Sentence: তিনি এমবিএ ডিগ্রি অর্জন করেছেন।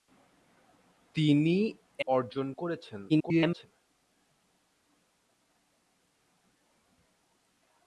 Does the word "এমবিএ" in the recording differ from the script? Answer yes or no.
yes